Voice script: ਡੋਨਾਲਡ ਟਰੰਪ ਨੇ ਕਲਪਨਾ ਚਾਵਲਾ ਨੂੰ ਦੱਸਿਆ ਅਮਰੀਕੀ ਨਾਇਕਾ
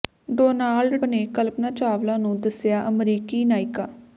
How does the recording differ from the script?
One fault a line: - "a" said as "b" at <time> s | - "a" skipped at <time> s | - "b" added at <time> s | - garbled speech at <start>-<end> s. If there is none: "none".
- "ਟਰੰਪ" skipped at 0.9 s